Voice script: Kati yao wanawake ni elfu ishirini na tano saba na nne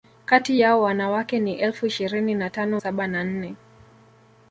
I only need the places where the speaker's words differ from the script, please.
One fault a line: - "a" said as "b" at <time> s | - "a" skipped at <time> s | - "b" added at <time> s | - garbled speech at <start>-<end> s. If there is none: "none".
none